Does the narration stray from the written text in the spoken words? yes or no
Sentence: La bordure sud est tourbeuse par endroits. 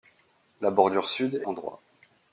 yes